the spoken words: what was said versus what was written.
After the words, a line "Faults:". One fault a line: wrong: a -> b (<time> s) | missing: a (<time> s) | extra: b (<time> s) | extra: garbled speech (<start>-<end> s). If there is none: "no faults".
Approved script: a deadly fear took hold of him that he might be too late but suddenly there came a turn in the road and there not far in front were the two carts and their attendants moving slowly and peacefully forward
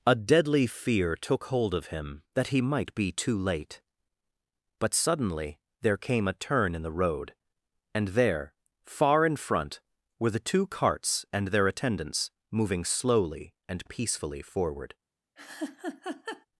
a deadly fear took hold of him that he might be too late but suddenly there came a turn in the road and there far in front were the two carts and their attendants moving slowly and peacefully forward
Faults:
missing: not (8.5 s)